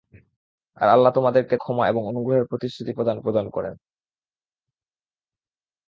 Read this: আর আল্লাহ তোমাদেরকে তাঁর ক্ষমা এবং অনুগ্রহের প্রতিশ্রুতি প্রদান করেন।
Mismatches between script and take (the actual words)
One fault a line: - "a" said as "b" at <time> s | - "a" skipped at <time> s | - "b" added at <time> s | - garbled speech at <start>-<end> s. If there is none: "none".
- "তাঁর" skipped at 1.6 s
- "প্রদান" added at 3.2 s